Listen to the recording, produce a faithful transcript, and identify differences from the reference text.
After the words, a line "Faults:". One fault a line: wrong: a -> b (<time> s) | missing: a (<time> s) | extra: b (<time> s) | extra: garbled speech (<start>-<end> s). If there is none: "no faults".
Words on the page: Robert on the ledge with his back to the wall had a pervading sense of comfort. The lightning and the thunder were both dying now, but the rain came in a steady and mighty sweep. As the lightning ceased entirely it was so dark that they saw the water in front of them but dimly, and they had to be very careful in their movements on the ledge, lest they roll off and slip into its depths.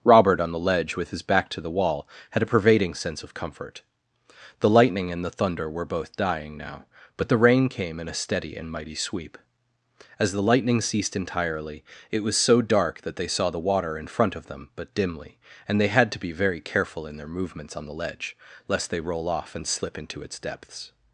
Robert on the ledge with his back to the wall had a pervading sense of comfort. The lightning and the thunder were both dying now, but the rain came in a steady and mighty sweep. As the lightning ceased entirely it was so dark that they saw the water in front of them but dimly, and they had to be very careful in their movements on the ledge, lest they roll off and slip into its depths.
Faults:
no faults